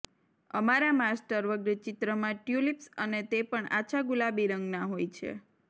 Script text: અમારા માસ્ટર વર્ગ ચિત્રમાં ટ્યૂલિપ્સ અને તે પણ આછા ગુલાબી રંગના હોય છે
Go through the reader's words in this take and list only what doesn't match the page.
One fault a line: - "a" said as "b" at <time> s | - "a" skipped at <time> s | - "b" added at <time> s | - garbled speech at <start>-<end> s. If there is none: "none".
none